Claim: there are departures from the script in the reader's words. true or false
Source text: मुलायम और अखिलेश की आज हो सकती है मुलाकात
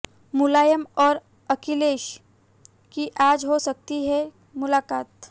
false